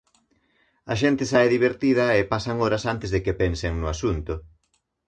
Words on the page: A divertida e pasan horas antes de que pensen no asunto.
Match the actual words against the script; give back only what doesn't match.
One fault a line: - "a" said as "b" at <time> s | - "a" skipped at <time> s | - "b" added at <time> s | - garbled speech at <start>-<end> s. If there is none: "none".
- "xente sae" added at 1.0 s